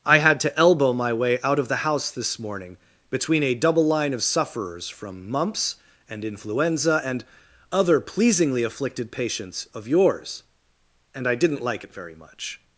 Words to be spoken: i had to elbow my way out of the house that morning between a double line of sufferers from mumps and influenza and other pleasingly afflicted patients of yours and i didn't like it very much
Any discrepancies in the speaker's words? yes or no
yes